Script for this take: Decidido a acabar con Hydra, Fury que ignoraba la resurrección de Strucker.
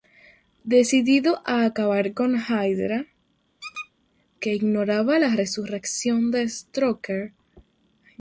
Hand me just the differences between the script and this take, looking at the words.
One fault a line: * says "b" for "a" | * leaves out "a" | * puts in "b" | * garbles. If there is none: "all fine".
* leaves out "Fury"